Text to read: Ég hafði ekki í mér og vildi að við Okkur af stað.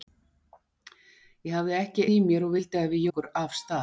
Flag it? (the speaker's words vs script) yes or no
no